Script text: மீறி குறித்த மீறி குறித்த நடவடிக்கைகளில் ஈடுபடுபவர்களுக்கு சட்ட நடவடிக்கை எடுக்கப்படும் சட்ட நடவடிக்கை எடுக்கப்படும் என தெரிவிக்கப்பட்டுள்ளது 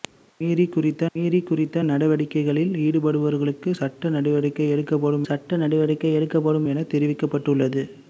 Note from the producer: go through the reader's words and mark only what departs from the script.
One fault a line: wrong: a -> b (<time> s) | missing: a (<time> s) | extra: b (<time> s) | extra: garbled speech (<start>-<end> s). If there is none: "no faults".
no faults